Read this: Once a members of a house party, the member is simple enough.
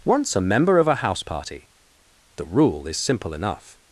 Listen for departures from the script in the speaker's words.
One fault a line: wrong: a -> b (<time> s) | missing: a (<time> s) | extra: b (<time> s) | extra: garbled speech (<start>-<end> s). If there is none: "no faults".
wrong: members -> member (0.4 s)
wrong: member -> rule (2.4 s)